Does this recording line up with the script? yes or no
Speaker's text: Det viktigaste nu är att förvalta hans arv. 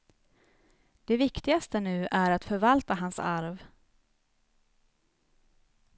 yes